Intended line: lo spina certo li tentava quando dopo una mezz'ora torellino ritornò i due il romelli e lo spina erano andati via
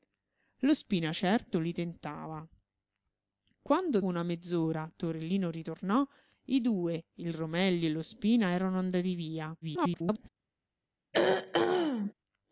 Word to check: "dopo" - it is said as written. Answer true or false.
false